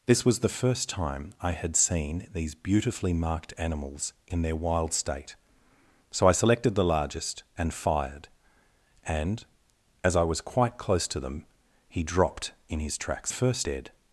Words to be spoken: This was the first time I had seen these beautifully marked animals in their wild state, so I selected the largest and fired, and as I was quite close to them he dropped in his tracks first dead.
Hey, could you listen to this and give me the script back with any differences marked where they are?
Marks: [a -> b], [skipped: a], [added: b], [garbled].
This was the first time I had seen these beautifully marked animals in their wild state, so I selected the largest and fired, and as I was quite close to them he dropped in his tracks first dead.